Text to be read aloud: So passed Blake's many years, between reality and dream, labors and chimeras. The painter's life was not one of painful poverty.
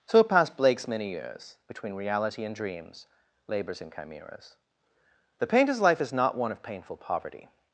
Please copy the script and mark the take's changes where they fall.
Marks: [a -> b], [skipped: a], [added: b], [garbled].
So passed Blake's many years, between reality and [dream, -> dreams] labors and chimeras. The painter's life [was -> is] not one of painful poverty.